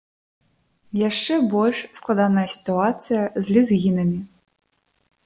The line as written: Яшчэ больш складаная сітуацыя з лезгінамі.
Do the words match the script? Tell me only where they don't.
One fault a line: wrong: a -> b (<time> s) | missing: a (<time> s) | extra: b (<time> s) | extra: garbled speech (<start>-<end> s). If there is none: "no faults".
no faults